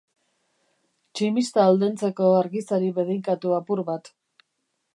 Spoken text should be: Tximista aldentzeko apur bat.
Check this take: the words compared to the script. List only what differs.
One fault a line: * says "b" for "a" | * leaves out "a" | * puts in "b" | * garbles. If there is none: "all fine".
* puts in "argizari bedeinkatu"